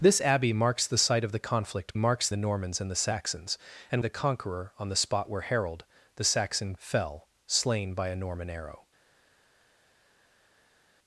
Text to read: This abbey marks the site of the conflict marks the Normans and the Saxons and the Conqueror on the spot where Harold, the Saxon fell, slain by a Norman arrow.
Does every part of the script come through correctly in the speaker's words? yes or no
yes